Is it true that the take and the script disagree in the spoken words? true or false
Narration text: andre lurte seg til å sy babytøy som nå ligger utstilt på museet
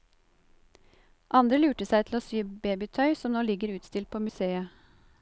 false